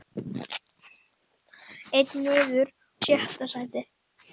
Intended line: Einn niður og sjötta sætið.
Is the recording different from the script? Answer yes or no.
yes